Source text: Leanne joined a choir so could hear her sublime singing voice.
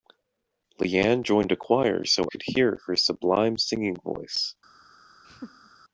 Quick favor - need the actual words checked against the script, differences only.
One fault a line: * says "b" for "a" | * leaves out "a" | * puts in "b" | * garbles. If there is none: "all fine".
all fine